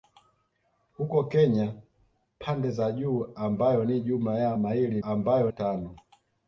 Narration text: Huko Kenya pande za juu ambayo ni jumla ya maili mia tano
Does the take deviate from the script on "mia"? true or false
true